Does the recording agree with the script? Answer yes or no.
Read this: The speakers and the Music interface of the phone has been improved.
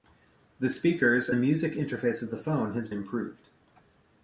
no